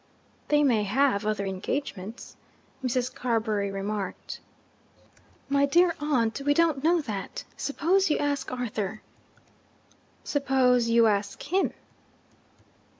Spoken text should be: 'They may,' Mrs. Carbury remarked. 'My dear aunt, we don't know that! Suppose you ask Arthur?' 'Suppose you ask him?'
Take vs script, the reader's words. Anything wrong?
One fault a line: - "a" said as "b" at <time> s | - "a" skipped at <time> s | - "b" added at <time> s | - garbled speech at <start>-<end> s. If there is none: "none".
- "have other engagements" added at 0.8 s